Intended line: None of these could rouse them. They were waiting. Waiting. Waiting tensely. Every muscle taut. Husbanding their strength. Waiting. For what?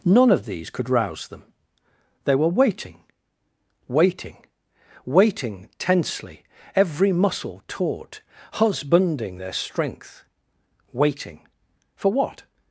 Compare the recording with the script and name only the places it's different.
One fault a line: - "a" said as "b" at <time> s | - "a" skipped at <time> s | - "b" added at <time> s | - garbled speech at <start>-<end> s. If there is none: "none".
none